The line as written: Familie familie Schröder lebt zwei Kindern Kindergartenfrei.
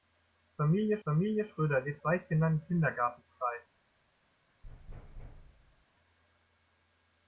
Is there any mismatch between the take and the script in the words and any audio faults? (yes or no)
yes